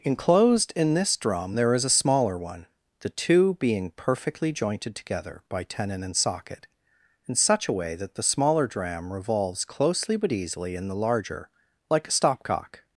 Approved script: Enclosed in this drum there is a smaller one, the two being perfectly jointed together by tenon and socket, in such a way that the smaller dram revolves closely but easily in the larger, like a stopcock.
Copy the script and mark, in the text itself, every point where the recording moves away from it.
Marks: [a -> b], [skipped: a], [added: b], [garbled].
Enclosed in this drum there is a smaller one, the two being perfectly jointed together by tenon and socket, in such a way that the smaller dram revolves closely but easily in the larger, like a stopcock.